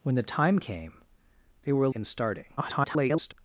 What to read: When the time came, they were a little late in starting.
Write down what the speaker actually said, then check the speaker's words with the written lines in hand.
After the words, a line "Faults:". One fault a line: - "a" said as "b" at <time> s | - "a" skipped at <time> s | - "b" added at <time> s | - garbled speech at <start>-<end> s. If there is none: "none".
When the time came, they were a in starting. [garbled]
Faults:
- "little late" skipped at 1.9 s
- garbled speech at 2.6-3.3 s